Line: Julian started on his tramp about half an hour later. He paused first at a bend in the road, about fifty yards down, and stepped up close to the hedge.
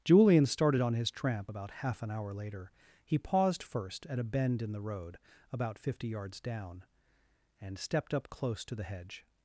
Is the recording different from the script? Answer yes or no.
no